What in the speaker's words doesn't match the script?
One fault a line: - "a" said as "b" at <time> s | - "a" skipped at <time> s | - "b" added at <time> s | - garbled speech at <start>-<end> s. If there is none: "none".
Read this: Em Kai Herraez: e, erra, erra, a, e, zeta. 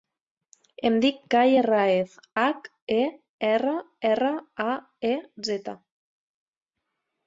- "dic" added at 1.0 s
- "hac" added at 2.4 s